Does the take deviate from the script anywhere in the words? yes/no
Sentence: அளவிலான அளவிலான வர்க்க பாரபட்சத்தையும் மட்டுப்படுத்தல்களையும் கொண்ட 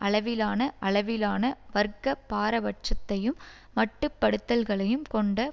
no